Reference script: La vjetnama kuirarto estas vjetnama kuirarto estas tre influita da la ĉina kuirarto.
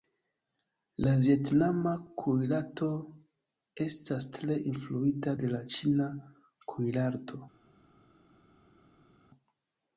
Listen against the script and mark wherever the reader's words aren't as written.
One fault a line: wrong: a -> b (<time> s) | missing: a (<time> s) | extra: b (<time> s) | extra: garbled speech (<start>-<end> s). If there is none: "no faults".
missing: vjetnama kuirarto estas (4.3 s)
wrong: da -> de (5.4 s)